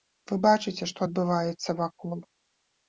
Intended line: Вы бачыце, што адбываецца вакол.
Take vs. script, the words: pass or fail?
pass